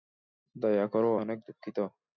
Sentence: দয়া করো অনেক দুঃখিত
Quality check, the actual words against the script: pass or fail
pass